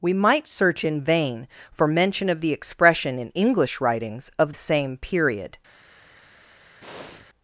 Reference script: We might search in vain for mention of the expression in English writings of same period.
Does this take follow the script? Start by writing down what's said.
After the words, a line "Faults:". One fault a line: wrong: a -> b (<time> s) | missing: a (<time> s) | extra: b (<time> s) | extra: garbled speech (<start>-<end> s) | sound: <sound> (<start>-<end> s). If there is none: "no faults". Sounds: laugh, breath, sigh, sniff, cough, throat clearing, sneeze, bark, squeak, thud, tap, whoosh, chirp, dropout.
We might search in vain for mention of the expression in English writings of same period.
Faults:
sound: breath (6.8-7.3 s)